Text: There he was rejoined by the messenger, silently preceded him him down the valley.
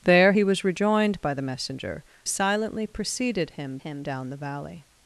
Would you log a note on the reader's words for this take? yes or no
no